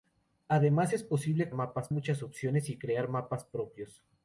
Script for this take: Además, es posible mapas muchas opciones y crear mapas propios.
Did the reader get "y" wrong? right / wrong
right